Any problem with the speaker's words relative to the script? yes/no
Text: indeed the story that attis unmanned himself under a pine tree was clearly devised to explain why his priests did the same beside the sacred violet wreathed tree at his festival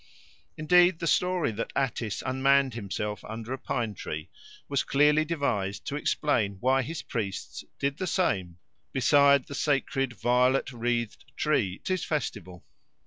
yes